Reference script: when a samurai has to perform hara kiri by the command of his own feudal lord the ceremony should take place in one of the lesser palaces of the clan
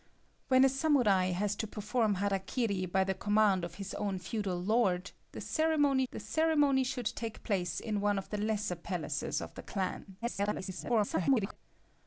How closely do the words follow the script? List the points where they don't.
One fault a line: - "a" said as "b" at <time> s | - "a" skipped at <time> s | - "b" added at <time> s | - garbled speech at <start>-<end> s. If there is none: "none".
- "the ceremony" added at 6.1 s
- garbled speech at 10.2-11.6 s